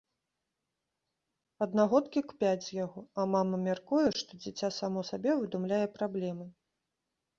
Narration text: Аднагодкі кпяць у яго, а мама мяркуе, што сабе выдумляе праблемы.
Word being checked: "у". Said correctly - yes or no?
no